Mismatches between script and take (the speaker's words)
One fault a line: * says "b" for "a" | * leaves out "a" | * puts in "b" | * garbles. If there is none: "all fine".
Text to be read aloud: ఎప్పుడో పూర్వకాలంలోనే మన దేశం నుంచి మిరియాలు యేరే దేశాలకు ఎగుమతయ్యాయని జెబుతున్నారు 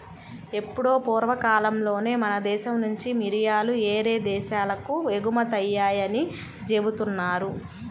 all fine